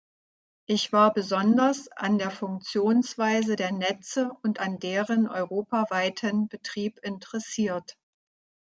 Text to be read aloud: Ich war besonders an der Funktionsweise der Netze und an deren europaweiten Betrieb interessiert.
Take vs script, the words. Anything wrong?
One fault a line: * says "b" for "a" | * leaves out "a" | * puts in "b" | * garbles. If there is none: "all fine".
all fine